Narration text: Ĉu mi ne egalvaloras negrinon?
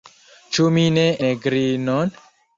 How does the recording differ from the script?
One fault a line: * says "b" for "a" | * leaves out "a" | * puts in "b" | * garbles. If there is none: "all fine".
* leaves out "egalvaloras"